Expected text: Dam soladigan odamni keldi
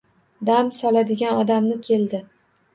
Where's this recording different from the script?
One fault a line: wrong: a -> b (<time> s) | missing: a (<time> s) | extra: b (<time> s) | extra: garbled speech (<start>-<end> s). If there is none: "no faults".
no faults